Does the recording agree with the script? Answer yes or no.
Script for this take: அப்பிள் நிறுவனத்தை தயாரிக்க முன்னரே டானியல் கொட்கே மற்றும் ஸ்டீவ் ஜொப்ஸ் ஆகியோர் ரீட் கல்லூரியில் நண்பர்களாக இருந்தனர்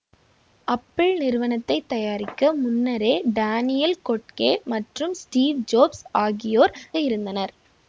no